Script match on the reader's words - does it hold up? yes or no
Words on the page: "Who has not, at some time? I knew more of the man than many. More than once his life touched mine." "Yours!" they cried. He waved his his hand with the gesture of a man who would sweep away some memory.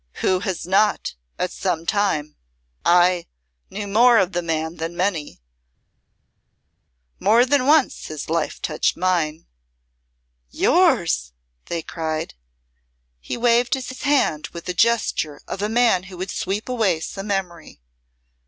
yes